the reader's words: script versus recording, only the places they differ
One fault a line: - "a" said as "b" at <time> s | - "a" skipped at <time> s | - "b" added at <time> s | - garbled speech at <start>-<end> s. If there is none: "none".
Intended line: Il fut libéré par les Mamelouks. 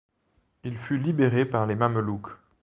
none